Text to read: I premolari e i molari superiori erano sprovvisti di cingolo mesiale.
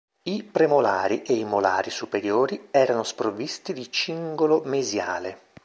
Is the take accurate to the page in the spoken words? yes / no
yes